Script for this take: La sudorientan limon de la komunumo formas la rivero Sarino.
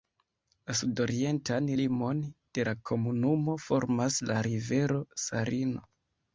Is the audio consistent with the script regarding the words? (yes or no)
yes